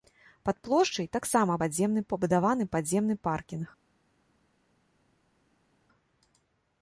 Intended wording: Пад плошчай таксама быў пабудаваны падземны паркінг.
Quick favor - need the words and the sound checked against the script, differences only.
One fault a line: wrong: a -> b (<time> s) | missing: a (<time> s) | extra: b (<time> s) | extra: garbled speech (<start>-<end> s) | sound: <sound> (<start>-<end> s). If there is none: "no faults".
wrong: быў -> падземны (1.6 s)